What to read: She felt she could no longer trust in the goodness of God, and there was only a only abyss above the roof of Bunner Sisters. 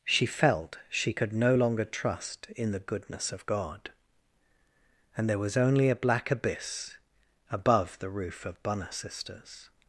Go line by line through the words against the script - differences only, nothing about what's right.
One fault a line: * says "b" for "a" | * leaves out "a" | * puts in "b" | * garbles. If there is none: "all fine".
* says "black" for "only"